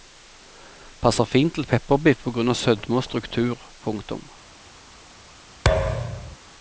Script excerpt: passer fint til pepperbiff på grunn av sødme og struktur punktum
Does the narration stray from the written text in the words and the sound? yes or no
yes